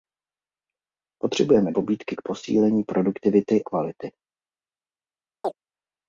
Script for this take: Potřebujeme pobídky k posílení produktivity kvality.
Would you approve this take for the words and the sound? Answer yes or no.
no